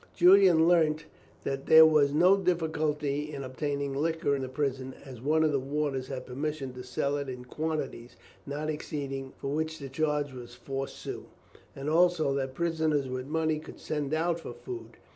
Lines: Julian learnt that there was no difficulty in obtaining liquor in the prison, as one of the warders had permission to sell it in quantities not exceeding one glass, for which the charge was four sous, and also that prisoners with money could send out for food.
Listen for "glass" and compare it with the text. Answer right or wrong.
wrong